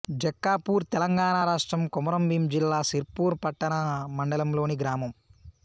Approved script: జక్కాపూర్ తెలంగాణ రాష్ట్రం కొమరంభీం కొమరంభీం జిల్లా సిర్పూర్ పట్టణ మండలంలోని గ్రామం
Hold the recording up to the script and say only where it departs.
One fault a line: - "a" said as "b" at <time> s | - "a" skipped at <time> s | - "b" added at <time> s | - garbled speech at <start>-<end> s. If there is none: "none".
- "కొమరంభీం" skipped at 2.4 s